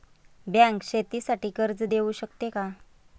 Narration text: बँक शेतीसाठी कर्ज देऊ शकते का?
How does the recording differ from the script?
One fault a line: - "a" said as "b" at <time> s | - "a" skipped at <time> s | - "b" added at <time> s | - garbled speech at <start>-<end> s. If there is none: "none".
none